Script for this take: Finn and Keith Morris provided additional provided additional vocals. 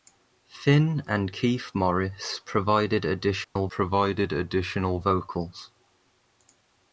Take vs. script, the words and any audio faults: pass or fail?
fail